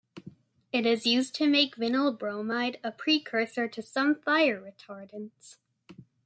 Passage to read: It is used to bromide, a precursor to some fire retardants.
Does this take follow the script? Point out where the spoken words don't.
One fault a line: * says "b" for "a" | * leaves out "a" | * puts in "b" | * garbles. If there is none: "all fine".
* puts in "make vinyl"